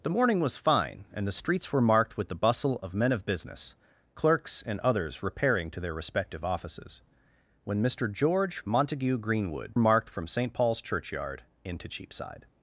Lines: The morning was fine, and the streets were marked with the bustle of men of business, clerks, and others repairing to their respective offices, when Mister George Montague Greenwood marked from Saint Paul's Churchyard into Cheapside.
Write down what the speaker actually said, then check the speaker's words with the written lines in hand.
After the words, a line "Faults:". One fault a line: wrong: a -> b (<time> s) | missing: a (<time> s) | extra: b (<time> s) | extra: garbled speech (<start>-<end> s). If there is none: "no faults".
The morning was fine, and the streets were marked with the bustle of men of business, clerks, and others repairing to their respective offices, when Mister George Montague Greenwood marked from Saint Paul's Churchyard into Cheapside.
Faults:
no faults